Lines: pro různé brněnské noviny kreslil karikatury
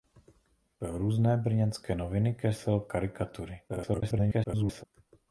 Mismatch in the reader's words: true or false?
true